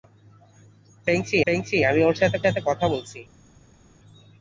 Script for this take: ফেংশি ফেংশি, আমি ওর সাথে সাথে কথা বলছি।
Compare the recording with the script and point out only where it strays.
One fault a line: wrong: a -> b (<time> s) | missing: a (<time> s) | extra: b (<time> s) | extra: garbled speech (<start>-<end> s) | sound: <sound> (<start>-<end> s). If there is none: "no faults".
no faults